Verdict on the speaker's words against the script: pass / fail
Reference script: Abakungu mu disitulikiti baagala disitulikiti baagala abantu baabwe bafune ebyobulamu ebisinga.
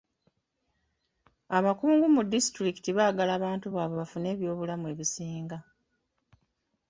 fail